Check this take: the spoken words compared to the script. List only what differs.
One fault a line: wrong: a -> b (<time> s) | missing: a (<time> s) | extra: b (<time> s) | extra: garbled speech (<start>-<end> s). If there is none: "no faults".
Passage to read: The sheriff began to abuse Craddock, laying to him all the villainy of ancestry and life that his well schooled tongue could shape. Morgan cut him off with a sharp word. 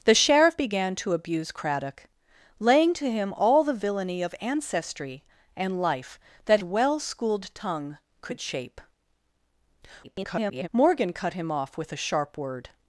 missing: his (6.6 s)
extra: garbled speech (10.0-10.7 s)